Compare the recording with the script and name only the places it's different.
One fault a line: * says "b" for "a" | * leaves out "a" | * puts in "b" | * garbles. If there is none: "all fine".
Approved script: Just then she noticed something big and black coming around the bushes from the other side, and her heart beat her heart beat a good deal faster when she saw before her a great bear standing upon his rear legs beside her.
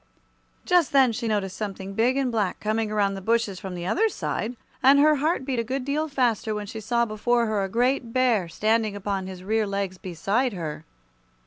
* leaves out "her heart beat"